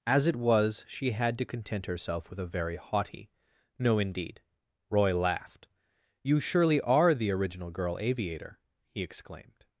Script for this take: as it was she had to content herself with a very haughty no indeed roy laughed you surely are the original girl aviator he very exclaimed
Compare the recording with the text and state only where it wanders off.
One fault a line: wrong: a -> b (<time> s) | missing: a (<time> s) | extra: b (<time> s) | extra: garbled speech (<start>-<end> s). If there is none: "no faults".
missing: very (9.0 s)